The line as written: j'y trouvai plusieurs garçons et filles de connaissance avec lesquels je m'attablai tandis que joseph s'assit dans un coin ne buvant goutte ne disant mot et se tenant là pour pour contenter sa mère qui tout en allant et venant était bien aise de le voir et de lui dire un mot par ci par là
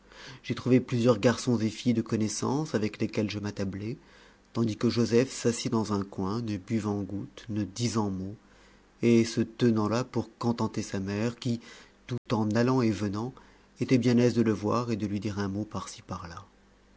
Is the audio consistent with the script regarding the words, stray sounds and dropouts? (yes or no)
no